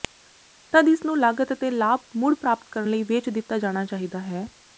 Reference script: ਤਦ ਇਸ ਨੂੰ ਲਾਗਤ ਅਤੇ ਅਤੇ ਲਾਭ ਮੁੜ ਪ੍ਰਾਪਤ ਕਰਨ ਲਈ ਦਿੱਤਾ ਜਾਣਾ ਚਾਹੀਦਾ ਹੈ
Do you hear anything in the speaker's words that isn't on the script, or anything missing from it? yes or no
yes